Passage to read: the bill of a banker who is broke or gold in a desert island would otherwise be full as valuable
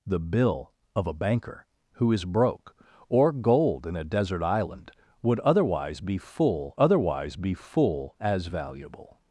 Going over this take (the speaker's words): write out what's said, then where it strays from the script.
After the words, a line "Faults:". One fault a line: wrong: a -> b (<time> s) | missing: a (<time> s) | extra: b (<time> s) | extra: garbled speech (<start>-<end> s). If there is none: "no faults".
the bill of a banker who is broke or gold in a desert island would otherwise be full otherwise be full as valuable
Faults:
extra: otherwise be full (6.7 s)